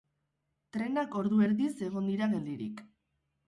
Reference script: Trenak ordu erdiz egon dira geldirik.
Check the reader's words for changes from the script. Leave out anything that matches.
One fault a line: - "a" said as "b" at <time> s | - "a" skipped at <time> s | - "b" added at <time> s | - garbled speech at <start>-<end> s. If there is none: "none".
none